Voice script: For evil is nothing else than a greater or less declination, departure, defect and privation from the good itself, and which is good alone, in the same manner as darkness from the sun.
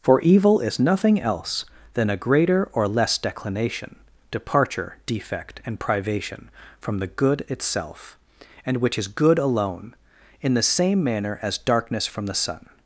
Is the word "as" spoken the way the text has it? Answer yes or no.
yes